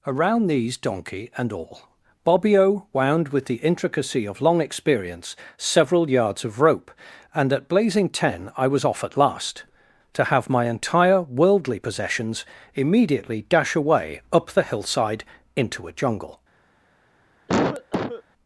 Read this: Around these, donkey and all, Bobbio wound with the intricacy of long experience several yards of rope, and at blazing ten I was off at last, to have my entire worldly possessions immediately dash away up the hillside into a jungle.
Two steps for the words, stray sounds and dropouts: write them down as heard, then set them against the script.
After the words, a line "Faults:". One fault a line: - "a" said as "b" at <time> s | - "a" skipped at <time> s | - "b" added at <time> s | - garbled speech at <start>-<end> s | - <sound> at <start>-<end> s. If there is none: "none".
Around these, donkey and all, Bobbio wound with the intricacy of long experience several yards of rope, and at blazing ten I was off at last, to have my entire worldly possessions immediately dash away up the hillside into a jungle.
Faults:
- cough at 17.5-18.2 s